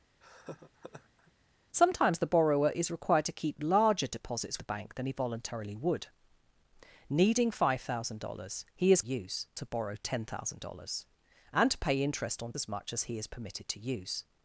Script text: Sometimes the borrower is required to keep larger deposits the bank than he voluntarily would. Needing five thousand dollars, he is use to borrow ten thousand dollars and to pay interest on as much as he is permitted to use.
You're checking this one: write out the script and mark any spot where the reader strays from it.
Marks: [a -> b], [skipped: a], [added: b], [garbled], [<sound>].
[laugh] Sometimes the borrower is required to keep larger deposits the bank than he voluntarily would. Needing five thousand dollars, he is use to borrow ten thousand dollars and to pay interest on as much as he is permitted to use.